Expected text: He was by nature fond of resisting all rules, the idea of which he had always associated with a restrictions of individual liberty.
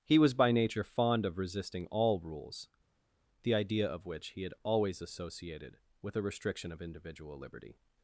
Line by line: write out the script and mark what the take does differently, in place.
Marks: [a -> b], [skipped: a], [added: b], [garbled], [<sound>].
He was by nature fond of resisting all rules, the idea of which he had always associated with a [restrictions -> restriction] of individual liberty.